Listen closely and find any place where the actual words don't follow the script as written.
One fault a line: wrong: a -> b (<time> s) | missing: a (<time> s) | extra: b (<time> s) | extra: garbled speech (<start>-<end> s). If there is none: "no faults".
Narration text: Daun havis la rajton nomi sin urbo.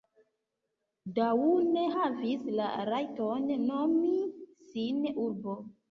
no faults